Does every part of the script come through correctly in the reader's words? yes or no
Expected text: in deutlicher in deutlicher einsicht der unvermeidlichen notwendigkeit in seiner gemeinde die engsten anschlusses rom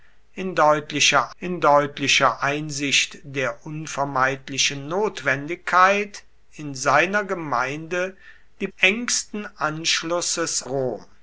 yes